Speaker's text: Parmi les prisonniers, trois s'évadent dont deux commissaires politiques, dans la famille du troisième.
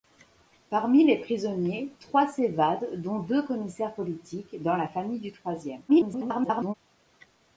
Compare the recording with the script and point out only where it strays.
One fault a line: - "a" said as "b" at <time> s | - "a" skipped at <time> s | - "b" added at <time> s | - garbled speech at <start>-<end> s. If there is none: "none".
- garbled speech at 5.9-6.7 s